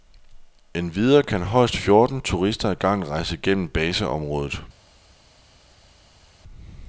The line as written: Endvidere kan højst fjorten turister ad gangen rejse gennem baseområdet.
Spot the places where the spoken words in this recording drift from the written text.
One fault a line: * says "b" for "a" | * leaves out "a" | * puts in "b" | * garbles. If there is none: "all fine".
all fine